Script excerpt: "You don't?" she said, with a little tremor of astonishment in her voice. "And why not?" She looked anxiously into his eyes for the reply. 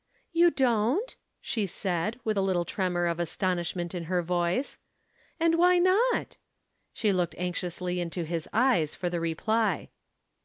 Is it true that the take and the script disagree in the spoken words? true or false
false